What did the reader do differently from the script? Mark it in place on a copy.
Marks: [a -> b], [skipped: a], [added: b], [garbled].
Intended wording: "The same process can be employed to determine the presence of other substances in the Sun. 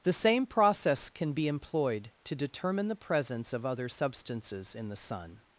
"The same process can be employed to determine the presence of other substances in the Sun.